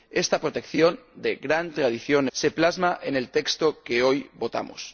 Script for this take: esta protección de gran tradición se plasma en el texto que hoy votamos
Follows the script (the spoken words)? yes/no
yes